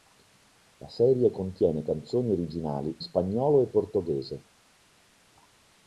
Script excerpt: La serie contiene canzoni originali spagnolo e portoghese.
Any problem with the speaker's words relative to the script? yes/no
no